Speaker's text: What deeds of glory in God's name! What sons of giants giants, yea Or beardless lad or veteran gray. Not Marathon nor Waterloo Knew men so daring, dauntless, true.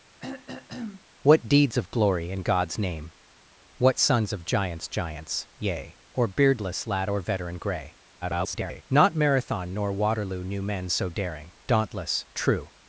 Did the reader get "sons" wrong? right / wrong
right